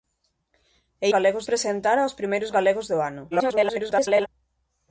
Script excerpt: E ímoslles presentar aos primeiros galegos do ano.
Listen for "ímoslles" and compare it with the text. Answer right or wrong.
wrong